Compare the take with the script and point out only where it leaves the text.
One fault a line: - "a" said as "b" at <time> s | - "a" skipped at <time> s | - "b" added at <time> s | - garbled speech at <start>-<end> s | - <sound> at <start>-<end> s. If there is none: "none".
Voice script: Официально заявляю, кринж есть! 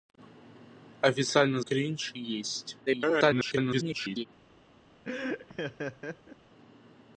- "заявляю" skipped at 1.6 s
- garbled speech at 2.9-4.3 s
- laugh at 5.0-6.4 s